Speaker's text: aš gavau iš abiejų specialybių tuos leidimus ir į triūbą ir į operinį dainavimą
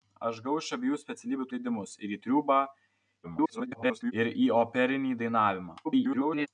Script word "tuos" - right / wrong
wrong